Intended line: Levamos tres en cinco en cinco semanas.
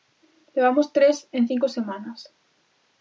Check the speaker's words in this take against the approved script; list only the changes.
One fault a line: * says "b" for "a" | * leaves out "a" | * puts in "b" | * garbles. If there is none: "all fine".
* leaves out "en cinco"